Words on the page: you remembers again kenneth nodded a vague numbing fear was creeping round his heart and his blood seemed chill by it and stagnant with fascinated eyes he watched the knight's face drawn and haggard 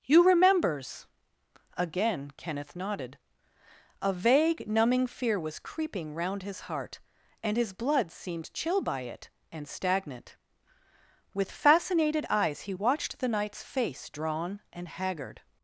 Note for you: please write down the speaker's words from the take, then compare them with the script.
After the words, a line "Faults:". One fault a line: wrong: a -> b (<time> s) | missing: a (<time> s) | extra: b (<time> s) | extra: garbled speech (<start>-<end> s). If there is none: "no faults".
you remembers again kenneth nodded a vague numbing fear was creeping round his heart and his blood seemed chill by it and stagnant with fascinated eyes he watched the knight's face drawn and haggard
Faults:
no faults